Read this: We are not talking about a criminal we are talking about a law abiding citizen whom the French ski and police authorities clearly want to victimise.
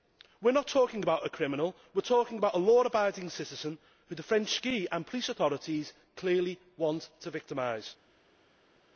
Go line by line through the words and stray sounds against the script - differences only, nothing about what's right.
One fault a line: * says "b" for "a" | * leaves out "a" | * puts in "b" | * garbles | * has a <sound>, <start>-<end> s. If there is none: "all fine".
all fine